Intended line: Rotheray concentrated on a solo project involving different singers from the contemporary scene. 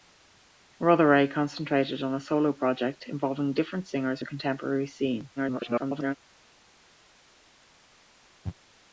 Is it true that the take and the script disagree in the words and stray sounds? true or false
true